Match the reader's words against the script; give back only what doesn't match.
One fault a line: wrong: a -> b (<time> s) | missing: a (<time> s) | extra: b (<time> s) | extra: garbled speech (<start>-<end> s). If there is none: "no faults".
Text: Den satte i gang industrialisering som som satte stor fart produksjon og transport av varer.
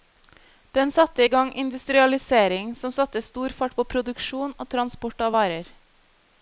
missing: som (2.9 s)
extra: på (3.7 s)